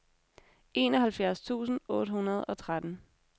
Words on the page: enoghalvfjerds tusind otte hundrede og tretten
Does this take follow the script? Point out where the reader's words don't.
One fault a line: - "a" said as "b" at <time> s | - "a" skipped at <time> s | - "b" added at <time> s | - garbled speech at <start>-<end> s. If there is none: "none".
none